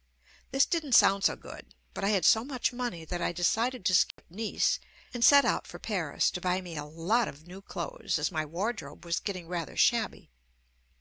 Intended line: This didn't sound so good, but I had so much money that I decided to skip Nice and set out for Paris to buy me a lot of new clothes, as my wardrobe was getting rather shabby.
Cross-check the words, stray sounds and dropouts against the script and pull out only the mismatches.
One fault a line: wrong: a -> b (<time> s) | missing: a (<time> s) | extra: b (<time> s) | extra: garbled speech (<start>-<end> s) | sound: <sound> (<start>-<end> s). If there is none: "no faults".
sound: dropout (4.1-4.2 s)